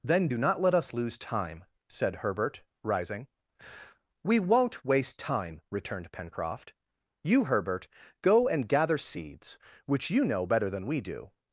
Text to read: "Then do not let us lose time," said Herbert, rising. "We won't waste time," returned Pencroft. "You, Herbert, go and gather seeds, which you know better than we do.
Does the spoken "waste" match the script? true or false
true